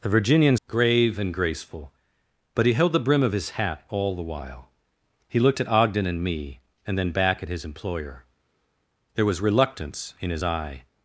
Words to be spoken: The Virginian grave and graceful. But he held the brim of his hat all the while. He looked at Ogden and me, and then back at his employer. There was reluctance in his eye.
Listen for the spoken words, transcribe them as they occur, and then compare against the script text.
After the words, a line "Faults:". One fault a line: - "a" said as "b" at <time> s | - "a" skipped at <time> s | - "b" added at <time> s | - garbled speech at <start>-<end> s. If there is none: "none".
The Virginian grave and graceful. But he held the brim of his hat all the while. He looked at Ogden and me, and then back at his employer. There was reluctance in his eye.
Faults:
none